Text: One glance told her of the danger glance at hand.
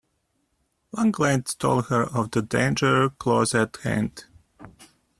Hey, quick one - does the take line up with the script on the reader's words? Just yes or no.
no